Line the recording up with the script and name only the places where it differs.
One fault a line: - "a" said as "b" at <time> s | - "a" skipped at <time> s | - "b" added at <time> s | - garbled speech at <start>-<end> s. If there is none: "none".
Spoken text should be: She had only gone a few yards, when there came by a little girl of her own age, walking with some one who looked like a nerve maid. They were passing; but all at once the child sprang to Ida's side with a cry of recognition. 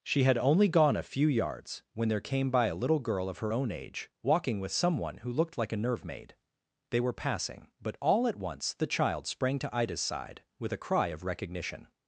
none